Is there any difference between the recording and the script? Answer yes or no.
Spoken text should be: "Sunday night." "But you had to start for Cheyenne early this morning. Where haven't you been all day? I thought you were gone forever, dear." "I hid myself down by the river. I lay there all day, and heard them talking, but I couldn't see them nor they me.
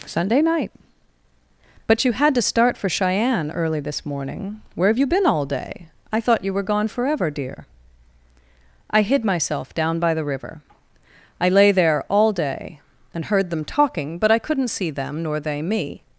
yes